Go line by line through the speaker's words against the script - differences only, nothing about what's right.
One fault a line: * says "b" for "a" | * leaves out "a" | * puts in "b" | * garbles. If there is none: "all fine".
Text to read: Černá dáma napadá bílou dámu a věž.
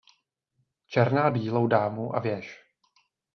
* leaves out "dáma napadá"